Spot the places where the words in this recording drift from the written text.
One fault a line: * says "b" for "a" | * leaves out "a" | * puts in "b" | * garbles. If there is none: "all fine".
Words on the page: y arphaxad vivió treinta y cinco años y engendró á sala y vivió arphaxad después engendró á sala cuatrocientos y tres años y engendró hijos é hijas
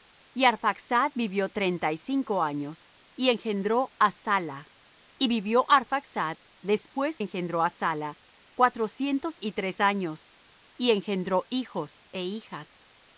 all fine